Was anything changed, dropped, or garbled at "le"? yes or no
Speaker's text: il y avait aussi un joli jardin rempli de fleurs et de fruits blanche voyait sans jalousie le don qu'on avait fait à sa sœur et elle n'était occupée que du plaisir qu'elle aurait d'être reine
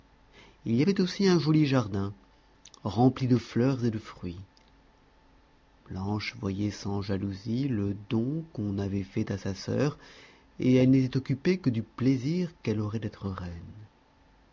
no